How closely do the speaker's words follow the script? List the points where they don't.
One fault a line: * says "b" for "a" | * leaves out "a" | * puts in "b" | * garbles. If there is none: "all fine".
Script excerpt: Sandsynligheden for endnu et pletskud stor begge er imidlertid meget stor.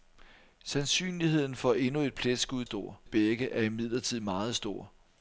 all fine